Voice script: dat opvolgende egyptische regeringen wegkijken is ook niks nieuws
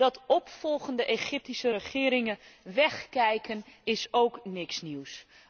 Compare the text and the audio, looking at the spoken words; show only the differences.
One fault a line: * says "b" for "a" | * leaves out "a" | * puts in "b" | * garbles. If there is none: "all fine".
all fine